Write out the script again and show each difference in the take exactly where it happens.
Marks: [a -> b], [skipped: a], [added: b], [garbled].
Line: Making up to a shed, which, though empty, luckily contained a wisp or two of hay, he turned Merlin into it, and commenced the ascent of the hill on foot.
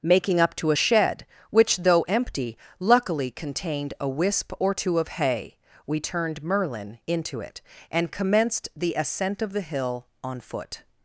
Making up to a shed, which, though empty, luckily contained a wisp or two of hay, [he -> we] turned Merlin into it, and commenced the ascent of the hill on foot.